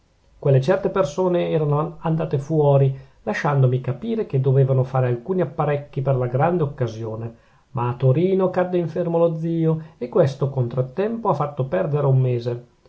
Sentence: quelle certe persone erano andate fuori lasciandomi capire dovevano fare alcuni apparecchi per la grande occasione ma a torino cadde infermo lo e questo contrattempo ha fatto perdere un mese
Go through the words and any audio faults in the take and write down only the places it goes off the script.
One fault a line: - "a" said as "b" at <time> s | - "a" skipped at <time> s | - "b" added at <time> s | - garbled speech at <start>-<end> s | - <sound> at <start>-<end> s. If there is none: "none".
- "che" added at 4.2 s
- "zio" added at 9.4 s